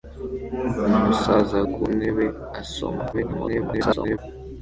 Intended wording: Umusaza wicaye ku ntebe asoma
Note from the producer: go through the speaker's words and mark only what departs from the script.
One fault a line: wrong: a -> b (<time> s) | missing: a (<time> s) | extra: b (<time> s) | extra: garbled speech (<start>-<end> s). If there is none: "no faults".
missing: wicaye (1.6 s)
extra: garbled speech (3.1-4.2 s)